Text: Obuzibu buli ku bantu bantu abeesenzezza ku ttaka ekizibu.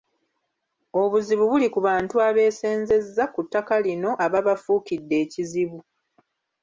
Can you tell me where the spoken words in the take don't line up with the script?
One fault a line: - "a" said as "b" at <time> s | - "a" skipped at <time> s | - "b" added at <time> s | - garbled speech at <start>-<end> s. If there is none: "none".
- "bantu" skipped at 2.1 s
- "lino ababafuukidde" added at 3.8 s